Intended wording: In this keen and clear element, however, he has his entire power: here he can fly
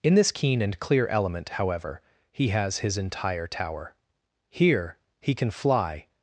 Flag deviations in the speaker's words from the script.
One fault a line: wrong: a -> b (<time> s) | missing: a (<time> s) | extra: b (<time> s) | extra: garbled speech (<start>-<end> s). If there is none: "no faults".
wrong: power -> tower (3.5 s)